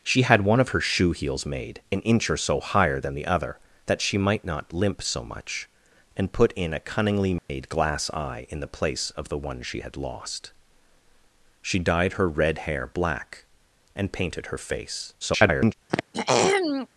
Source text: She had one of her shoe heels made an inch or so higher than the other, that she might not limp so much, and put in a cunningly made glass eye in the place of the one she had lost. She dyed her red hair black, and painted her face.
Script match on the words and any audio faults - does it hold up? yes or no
no